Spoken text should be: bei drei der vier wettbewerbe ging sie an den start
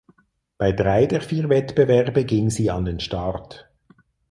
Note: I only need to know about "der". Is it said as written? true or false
true